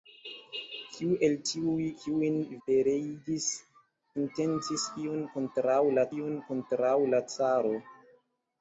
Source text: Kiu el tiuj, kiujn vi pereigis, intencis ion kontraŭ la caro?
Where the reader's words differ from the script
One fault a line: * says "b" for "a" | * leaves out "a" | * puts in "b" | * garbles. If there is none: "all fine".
* leaves out "vi"
* puts in "ion kontraŭ la"